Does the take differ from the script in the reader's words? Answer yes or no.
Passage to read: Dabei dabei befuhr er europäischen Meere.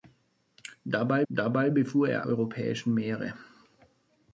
no